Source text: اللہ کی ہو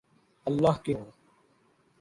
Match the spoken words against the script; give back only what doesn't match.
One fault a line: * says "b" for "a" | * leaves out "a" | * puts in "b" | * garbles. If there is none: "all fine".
all fine